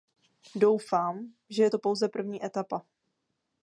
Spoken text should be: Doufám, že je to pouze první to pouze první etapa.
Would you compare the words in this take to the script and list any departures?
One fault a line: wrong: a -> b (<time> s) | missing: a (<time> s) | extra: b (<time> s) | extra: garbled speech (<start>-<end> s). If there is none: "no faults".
missing: to pouze první (2.5 s)